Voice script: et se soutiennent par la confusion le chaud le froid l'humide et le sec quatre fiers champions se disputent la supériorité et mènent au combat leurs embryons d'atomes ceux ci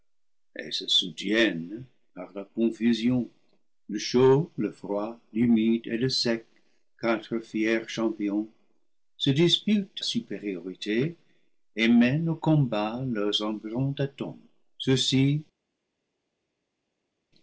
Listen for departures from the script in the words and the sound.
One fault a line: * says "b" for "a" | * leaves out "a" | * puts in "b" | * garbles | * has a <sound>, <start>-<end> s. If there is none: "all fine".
* leaves out "la"